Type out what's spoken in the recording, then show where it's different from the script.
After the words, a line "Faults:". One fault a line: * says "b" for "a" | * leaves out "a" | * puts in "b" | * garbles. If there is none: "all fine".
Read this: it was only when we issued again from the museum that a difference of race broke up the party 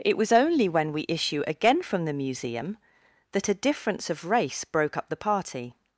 it was only when we issue again from the museum that a difference of race broke up the party
Faults:
* says "issue" for "issued"